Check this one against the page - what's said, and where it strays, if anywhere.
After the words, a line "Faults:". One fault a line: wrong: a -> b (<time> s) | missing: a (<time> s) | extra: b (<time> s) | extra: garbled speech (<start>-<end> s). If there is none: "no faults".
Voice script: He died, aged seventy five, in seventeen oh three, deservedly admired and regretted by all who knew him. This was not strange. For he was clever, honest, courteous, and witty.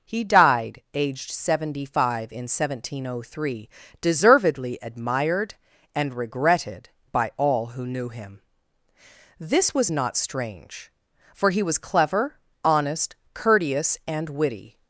He died, aged seventy five, in seventeen oh three, deservedly admired and regretted by all who knew him. This was not strange. For he was clever, honest, courteous, and witty.
Faults:
no faults